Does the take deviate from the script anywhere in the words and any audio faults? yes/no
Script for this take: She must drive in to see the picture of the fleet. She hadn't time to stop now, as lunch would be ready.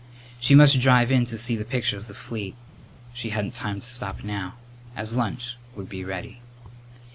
no